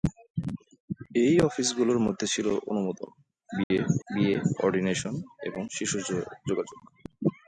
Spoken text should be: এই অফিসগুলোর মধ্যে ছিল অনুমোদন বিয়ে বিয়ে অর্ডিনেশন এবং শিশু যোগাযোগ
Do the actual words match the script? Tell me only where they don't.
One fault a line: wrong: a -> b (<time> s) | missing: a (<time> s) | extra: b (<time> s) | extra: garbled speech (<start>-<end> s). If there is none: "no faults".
no faults